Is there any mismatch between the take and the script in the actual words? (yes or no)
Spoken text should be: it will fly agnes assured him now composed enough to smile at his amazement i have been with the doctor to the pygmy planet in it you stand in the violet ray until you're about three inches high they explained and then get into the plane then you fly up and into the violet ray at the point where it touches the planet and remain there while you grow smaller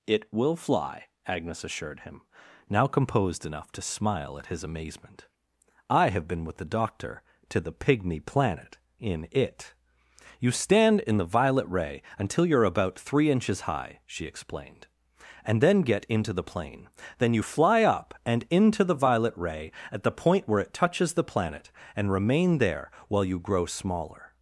yes